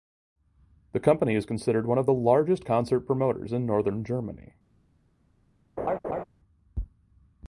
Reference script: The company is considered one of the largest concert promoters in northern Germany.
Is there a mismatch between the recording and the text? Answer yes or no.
no